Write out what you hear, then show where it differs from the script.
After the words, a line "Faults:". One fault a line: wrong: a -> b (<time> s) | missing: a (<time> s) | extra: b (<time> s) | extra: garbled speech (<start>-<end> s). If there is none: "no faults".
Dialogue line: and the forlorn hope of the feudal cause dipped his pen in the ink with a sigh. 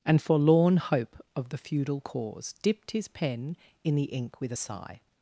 and forlorn hope of the feudal cause dipped his pen in the ink with a sigh.
Faults:
missing: the (0.2 s)